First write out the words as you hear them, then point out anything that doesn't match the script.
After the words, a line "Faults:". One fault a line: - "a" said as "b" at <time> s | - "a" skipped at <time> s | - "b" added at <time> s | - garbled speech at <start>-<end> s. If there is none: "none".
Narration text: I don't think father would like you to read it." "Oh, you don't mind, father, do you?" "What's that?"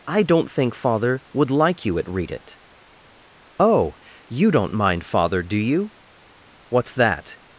I don't think father would like you at read it." "Oh, you don't mind, father, do you?" "What's that?"
Faults:
- "to" said as "at" at 2.0 s